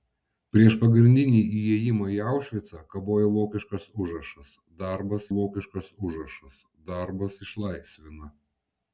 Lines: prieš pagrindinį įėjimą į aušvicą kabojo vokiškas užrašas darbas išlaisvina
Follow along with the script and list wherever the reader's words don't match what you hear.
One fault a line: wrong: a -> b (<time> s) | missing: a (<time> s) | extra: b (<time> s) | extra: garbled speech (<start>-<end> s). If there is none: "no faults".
extra: vokiškas užrašas darbas (5.4 s)